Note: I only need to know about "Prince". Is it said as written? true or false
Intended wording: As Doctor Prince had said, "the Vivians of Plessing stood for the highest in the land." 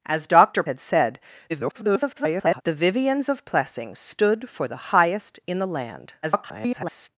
false